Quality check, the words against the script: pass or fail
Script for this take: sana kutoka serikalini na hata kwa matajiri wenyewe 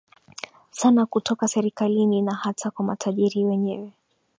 pass